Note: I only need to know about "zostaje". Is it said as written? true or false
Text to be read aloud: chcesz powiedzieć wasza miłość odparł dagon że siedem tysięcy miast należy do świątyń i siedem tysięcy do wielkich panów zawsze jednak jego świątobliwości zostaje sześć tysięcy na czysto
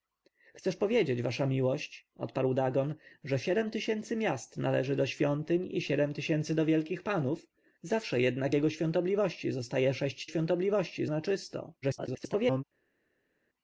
true